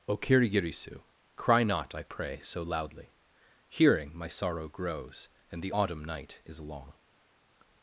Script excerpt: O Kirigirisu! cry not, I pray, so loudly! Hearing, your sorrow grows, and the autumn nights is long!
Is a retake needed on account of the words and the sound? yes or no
yes